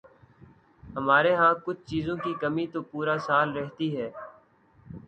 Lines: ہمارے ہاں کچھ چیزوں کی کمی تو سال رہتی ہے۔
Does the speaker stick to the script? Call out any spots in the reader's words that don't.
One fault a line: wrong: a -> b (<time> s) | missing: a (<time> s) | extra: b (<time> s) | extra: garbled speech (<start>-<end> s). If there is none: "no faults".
extra: پورا (2.9 s)